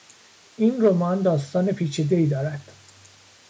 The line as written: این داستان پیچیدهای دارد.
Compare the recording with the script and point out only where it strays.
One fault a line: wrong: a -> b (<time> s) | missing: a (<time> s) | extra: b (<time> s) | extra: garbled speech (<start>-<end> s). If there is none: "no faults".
extra: رمان (0.8 s)